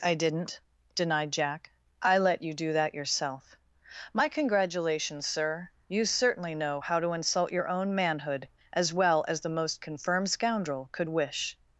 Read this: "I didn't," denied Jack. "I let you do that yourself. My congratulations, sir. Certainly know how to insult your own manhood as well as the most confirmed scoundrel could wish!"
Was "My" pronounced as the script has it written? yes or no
yes